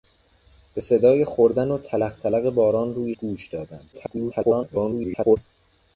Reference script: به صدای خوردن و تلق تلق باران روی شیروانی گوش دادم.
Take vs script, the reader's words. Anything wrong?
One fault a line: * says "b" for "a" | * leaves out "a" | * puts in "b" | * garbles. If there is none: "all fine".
* leaves out "شیروانی"
* garbles